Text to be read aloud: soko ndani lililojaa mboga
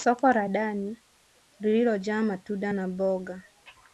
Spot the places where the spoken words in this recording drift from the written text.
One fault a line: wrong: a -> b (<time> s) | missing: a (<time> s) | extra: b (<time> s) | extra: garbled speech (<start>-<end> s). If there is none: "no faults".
extra: la (0.3 s)
extra: matunda na (2.2 s)